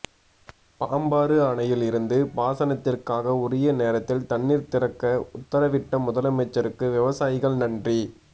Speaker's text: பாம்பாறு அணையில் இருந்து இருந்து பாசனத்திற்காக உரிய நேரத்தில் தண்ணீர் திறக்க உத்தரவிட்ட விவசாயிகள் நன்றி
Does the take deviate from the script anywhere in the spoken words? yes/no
yes